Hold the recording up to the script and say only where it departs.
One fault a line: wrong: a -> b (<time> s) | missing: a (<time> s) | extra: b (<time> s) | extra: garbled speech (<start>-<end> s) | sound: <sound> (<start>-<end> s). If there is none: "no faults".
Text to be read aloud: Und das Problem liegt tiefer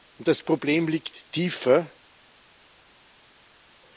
no faults